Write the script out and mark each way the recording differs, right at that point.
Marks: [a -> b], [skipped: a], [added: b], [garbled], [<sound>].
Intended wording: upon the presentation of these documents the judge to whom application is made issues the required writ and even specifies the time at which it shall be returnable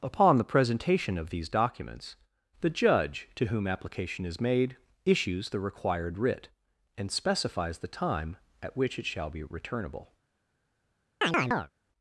upon the presentation of these documents the judge to whom application is made issues the required writ and [skipped: even] specifies the time at which it shall be returnable [chirp]